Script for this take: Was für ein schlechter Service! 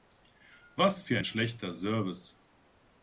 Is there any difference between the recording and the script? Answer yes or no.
no